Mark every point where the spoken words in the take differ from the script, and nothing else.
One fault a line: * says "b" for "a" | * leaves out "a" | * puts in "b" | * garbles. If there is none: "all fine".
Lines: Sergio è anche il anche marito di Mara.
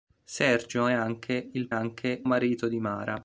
all fine